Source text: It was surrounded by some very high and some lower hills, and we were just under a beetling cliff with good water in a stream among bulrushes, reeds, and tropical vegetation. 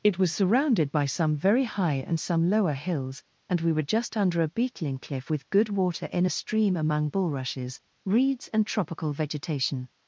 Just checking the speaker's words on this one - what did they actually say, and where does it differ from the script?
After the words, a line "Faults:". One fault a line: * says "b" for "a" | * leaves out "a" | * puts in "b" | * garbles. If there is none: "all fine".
It was surrounded by some very high and some lower hills, and we were just under a beetling cliff with good water in a stream among bulrushes, reeds, and tropical vegetation.
Faults:
all fine